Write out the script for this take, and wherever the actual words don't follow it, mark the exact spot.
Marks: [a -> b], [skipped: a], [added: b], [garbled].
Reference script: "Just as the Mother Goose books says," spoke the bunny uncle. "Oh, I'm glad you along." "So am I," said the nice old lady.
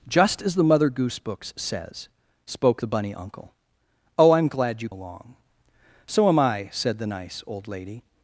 "Just as the Mother Goose books says," spoke the bunny uncle. "Oh, I'm glad you along." "So am I," said the nice old lady.